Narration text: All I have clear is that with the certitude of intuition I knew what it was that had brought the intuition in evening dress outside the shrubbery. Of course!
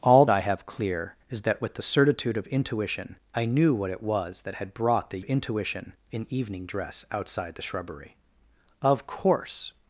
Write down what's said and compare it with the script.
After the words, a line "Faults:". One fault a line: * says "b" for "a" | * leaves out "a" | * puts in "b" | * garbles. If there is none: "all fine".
All I have clear is that with the certitude of intuition I knew what it was that had brought the intuition in evening dress outside the shrubbery. Of course!
Faults:
all fine